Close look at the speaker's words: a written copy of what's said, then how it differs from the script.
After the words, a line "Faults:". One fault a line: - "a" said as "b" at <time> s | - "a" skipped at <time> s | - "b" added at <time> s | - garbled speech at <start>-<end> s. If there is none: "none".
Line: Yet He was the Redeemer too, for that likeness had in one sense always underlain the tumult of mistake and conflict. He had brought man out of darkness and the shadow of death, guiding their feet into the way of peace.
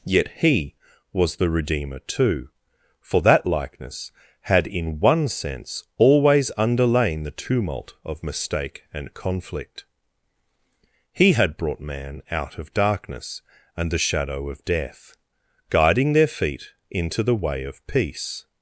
Yet He was the Redeemer too, for that likeness had in one sense always underlain the tumult of mistake and conflict. He had brought man out of darkness and the shadow of death, guiding their feet into the way of peace.
Faults:
none